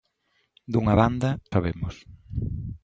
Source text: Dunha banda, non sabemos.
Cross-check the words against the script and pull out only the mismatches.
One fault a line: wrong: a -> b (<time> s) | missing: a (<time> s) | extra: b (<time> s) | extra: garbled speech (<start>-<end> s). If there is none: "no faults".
missing: non (1.3 s)